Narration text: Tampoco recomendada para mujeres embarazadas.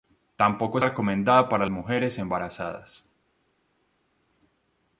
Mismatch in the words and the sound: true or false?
false